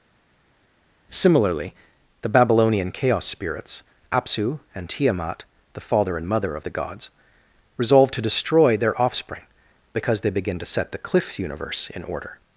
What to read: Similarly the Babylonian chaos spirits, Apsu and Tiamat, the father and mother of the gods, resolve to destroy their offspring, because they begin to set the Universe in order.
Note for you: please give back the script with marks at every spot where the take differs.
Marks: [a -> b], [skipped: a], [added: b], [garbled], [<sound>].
Similarly the Babylonian chaos spirits, Apsu and Tiamat, the father and mother of the gods, resolve to destroy their offspring, because they begin to set the [added: cliff] Universe in order.